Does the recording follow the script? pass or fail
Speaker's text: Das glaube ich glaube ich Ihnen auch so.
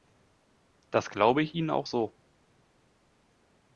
fail